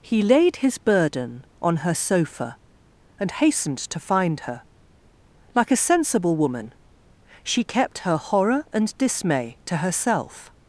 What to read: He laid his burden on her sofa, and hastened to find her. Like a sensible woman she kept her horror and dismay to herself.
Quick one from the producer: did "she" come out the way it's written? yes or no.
yes